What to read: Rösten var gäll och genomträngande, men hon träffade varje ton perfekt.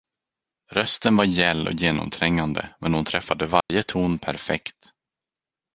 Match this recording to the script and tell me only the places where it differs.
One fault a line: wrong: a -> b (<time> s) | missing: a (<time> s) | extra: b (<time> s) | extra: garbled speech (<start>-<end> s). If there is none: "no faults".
no faults